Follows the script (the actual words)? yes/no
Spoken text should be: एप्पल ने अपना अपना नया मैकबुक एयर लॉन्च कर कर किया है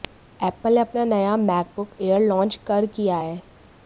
no